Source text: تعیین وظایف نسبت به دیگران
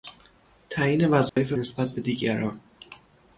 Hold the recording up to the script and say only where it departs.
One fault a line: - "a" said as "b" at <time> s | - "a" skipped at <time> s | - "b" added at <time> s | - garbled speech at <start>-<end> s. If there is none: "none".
none